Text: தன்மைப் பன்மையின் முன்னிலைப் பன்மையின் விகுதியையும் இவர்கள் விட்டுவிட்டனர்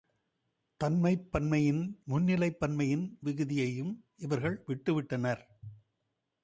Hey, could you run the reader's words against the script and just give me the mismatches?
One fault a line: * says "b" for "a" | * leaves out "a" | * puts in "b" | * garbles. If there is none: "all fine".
all fine